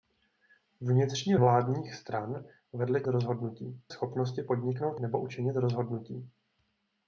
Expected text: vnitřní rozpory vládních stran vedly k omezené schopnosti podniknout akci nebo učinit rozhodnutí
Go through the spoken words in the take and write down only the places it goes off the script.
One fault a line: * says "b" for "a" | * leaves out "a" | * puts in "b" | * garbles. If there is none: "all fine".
* leaves out "rozpory"
* says "rozhodnutí" for "omezené"
* leaves out "akci"